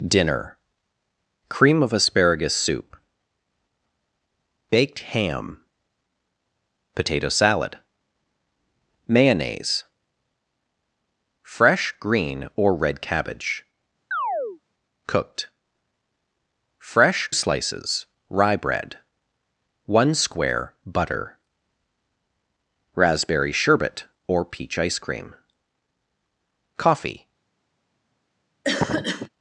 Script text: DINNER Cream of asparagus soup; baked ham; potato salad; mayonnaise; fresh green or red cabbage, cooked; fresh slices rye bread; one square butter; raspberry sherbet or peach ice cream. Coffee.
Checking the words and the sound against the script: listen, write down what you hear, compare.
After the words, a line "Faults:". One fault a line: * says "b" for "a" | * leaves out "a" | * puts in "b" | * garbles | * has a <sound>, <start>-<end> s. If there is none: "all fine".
DINNER Cream of asparagus soup; baked ham; potato salad; mayonnaise; fresh green or red cabbage, cooked; fresh slices rye bread; one square butter; raspberry sherbet or peach ice cream. Coffee.
Faults:
* has a chirp, 14.1-14.6 s
* has a cough, 28.6-29.3 s